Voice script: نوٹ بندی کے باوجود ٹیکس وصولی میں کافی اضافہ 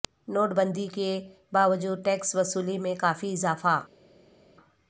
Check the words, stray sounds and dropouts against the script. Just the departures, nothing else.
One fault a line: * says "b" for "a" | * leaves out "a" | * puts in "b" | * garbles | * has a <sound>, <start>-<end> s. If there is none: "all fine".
all fine